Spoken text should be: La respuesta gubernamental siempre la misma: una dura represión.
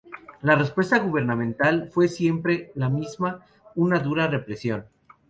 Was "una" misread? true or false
false